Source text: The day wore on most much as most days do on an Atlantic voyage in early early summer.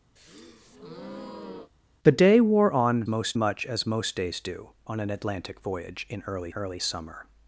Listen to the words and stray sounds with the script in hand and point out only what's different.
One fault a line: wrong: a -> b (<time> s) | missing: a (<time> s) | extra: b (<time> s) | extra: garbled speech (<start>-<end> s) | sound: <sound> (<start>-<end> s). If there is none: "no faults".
sound: breath (0.2-1.7 s)